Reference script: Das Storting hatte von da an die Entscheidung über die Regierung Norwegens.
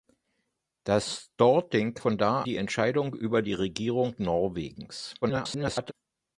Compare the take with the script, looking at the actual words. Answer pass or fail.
fail